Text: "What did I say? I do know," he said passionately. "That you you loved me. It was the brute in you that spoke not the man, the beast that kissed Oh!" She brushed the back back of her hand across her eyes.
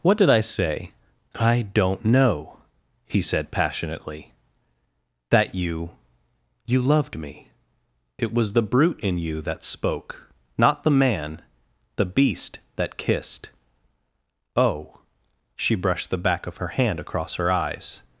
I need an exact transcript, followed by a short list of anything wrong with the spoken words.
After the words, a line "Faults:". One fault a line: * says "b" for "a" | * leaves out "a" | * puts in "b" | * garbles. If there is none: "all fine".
"What did I say? I don't know," he said passionately. "That you you loved me. It was the brute in you that spoke not the man, the beast that kissed Oh!" She brushed the back of her hand across her eyes.
Faults:
* says "don't" for "do"
* leaves out "back"